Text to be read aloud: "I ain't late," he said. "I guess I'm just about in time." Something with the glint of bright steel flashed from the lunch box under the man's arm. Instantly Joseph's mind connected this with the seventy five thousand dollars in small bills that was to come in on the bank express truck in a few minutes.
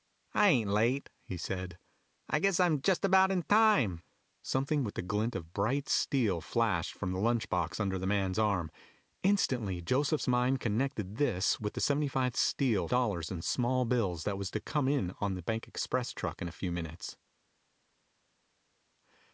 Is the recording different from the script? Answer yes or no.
yes